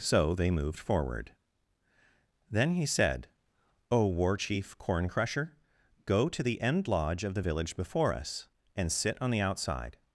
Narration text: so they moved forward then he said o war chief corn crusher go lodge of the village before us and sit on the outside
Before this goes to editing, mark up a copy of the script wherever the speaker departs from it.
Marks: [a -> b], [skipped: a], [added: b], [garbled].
so they moved forward then he said o war chief corn crusher go [added: to the end] lodge of the village before us and sit on the outside